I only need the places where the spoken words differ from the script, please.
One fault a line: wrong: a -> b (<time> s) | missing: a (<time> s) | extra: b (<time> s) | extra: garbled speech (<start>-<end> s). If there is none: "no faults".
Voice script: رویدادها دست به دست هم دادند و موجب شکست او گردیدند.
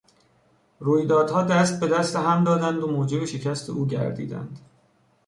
no faults